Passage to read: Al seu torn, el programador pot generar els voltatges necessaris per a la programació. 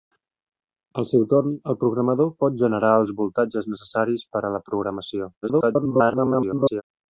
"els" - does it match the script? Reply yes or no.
yes